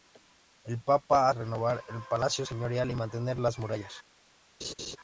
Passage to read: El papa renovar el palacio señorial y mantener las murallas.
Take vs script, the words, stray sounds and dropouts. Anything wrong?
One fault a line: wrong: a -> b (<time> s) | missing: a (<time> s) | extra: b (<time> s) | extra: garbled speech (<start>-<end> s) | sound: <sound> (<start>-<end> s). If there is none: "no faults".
sound: laugh (4.6-5.0 s)